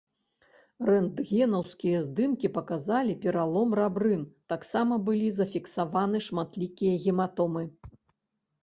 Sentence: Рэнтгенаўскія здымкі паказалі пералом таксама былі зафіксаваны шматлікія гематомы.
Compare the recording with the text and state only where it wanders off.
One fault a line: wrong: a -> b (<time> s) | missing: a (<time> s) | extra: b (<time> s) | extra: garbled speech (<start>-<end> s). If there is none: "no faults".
extra: рабрын (3.8 s)